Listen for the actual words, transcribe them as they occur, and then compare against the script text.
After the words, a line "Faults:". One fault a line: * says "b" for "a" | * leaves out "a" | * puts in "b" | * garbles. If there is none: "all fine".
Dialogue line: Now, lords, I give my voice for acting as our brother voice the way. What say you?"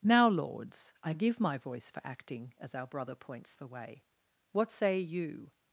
Now, lords, I give my voice for acting as our brother points the way. What say you?"
Faults:
* says "points" for "voice"